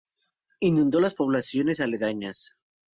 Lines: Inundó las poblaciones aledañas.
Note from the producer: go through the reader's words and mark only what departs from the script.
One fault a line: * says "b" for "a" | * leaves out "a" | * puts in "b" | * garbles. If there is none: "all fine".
all fine